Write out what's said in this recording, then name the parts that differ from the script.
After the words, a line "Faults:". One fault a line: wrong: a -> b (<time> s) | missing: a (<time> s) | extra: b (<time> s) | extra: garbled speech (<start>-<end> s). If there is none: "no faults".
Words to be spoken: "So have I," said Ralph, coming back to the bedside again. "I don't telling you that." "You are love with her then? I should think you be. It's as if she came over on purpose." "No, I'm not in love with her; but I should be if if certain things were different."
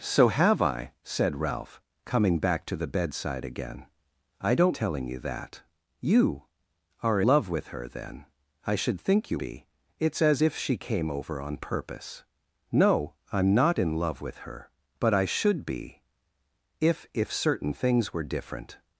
"So have I," said Ralph, coming back to the bedside again. "I don't telling you that." "You are love with her then? I should think you be. It's as if she came over on purpose." "No, I'm not in love with her; but I should be if if certain things were different."
Faults:
no faults